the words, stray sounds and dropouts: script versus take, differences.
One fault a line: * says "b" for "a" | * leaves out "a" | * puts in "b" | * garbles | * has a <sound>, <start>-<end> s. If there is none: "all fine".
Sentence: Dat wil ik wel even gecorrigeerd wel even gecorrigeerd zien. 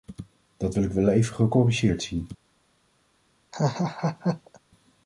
* leaves out "wel even gecorrigeerd"
* has a laugh, 3.5-4.6 s